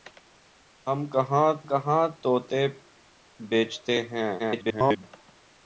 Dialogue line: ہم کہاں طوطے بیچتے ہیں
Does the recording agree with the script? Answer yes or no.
no